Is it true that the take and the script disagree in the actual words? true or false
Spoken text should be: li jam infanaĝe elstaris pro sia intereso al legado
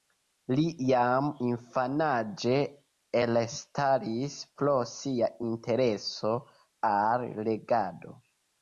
false